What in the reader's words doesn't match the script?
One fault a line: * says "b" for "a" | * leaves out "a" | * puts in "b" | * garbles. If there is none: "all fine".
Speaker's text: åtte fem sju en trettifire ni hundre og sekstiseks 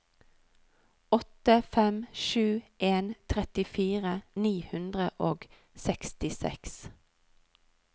all fine